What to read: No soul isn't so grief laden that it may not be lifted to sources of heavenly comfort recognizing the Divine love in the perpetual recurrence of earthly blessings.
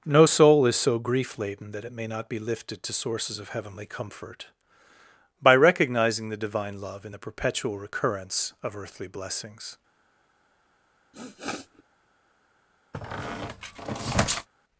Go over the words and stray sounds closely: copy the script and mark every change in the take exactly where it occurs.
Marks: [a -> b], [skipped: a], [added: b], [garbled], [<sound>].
No soul [isn't -> is] so grief laden that it may not be lifted to sources of heavenly comfort [added: by] recognizing the Divine love in the perpetual recurrence of earthly blessings. [sniff] [squeak]